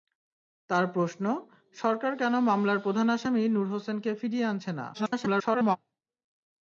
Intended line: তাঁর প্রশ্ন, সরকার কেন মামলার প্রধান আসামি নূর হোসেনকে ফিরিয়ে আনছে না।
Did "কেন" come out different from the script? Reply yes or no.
no